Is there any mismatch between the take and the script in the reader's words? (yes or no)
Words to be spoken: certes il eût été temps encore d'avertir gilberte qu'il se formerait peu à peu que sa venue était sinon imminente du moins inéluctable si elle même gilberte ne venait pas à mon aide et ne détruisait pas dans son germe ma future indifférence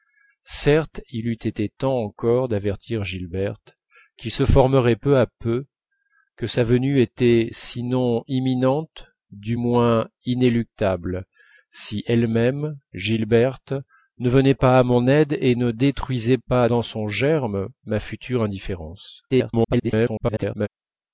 yes